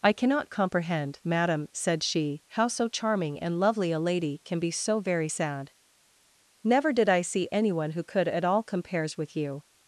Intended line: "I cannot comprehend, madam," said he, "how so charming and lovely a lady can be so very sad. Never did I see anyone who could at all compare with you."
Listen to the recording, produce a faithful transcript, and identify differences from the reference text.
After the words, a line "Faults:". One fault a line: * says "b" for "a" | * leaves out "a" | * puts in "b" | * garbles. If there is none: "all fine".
"I cannot comprehend, madam," said she, "how so charming and lovely a lady can be so very sad. Never did I see anyone who could at all compares with you."
Faults:
* says "she" for "he"
* says "compares" for "compare"